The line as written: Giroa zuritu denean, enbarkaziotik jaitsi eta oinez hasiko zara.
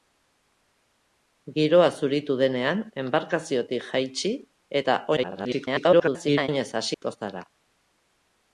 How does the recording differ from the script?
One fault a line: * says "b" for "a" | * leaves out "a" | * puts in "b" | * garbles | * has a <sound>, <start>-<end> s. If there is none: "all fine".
* garbles
* has a dropout, 6.9-7.0 s